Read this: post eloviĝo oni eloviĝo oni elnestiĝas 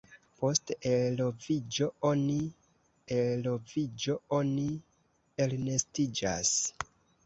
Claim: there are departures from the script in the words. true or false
false